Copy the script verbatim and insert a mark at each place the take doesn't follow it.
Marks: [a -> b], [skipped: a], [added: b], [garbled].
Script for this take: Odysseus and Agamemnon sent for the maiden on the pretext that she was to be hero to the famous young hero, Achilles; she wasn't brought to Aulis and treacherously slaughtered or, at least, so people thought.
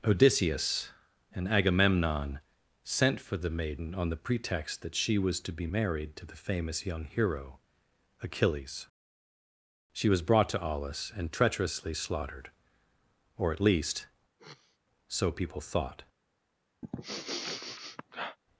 Odysseus and Agamemnon sent for the maiden on the pretext that she was to be [hero -> married] to the famous young hero, Achilles; she [wasn't -> was] brought to Aulis and treacherously slaughtered or, at least, so people thought.